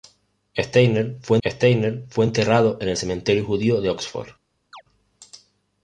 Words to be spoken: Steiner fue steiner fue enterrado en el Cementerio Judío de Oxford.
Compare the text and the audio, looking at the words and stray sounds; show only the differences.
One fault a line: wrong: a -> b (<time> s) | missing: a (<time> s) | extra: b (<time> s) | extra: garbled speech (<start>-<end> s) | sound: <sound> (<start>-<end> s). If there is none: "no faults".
sound: chirp (4.7-4.8 s)